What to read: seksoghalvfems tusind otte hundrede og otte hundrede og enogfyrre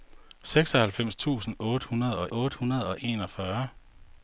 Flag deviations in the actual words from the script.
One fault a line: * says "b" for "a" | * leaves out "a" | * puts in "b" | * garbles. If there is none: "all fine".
all fine